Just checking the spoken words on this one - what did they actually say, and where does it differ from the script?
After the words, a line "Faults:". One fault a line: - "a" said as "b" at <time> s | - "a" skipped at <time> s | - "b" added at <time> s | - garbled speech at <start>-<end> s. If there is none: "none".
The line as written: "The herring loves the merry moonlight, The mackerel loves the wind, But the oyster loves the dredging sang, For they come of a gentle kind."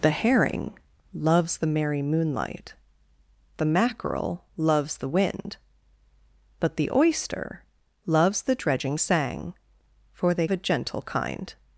"The herring loves the merry moonlight, The mackerel loves the wind, But the oyster loves the dredging sang, For they a gentle kind."
Faults:
- "come of" skipped at 10.5 s